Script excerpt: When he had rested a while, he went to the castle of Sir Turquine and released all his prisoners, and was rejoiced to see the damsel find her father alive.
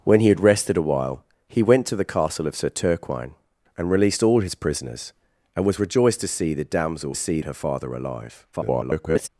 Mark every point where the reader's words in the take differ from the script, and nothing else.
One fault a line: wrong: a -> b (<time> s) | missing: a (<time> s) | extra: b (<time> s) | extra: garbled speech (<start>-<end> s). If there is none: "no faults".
wrong: find -> see (7.1 s)
extra: garbled speech (8.5-9.3 s)